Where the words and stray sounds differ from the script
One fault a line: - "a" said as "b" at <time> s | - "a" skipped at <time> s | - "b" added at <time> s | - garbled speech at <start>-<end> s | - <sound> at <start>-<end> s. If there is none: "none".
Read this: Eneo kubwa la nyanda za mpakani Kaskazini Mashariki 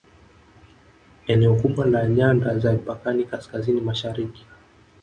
none